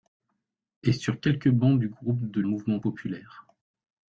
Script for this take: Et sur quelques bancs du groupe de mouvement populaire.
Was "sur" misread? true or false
false